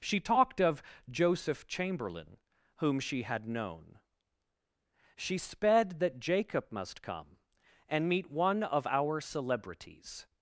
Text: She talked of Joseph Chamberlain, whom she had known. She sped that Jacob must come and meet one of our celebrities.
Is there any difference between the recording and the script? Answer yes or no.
no